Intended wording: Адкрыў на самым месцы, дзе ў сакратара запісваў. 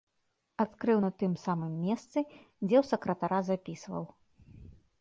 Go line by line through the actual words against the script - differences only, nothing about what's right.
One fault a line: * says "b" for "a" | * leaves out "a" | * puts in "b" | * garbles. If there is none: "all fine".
* puts in "тым"